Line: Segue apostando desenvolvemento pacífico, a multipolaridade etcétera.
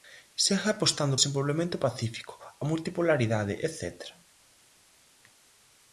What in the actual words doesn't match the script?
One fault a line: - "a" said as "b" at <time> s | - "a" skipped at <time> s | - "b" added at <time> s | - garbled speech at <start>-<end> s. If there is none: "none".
none